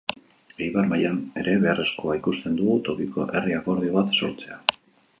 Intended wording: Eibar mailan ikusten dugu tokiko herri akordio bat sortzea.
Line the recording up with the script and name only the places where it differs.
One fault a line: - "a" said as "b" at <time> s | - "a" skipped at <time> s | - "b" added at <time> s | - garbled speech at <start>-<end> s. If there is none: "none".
- "ere beharrezkoa" added at 1.4 s